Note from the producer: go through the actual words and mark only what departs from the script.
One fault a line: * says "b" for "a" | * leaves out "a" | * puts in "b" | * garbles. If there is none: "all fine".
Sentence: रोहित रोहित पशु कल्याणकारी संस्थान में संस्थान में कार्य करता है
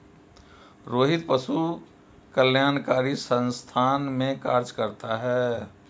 * leaves out "रोहित"
* leaves out "संस्थान में"